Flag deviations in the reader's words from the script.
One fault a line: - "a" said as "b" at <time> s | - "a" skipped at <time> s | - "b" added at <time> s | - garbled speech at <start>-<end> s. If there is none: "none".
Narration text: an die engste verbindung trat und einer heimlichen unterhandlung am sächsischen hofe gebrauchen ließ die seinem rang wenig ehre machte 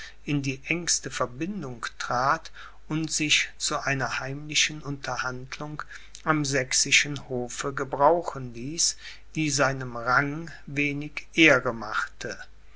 - "an" said as "in" at 0.2 s
- "sich zu" added at 3.1 s